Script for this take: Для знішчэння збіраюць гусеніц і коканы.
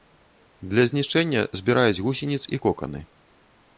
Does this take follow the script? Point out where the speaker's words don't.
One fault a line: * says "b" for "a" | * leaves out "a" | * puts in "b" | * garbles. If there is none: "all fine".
all fine